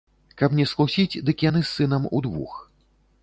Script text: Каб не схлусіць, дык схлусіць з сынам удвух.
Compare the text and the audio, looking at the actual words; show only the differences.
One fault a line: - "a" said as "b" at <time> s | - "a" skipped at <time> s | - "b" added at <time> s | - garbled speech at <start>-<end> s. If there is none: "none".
- "схлусіць" said as "яны" at 1.5 s